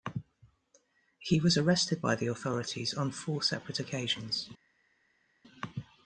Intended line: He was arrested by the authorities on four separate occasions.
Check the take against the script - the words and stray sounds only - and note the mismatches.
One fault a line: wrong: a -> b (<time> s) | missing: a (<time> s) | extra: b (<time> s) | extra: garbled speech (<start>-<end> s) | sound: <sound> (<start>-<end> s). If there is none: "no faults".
no faults